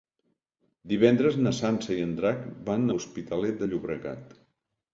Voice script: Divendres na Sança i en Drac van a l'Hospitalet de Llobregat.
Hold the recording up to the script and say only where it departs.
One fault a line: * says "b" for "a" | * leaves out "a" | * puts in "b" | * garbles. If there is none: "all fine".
* leaves out "a"